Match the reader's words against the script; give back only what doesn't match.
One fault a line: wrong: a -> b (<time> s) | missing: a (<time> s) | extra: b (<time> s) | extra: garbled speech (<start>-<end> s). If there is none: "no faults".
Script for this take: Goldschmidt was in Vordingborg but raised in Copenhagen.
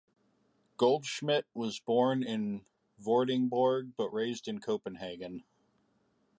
extra: born (1.8 s)